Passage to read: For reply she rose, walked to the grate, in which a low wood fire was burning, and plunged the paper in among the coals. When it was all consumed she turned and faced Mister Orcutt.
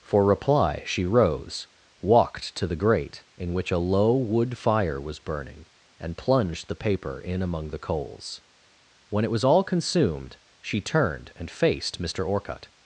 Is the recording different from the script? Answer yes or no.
no